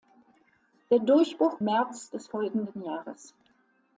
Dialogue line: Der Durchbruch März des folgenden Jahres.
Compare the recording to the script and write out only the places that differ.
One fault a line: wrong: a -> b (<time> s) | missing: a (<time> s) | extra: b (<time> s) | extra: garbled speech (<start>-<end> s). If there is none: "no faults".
no faults